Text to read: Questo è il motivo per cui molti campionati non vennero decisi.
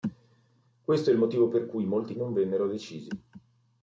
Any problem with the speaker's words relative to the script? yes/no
yes